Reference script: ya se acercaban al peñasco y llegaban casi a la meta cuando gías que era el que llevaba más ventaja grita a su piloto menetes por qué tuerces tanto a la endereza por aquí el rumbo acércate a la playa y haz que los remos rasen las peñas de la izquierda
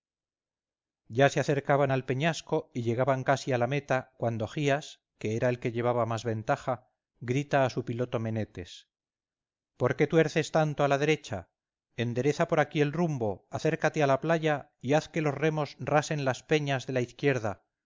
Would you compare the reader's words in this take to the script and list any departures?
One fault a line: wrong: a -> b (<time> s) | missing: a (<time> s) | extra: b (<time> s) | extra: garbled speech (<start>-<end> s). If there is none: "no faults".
extra: derecha (11.0 s)